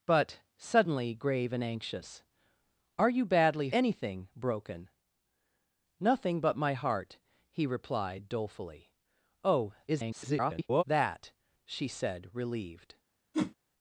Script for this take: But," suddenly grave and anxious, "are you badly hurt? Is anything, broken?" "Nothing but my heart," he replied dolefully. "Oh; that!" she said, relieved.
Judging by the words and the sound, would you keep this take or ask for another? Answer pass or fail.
fail